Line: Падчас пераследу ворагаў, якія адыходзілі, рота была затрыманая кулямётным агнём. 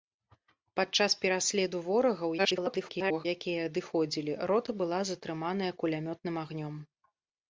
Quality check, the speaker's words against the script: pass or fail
fail